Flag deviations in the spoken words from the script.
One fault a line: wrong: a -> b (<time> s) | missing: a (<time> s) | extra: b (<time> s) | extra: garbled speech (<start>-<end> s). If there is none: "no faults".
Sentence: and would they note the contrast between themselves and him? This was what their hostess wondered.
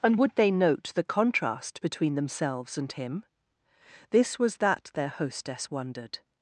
wrong: what -> that (4.6 s)